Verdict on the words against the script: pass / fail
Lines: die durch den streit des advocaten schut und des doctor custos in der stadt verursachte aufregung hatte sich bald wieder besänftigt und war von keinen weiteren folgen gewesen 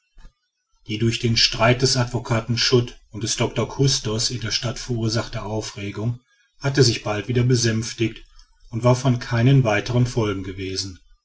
pass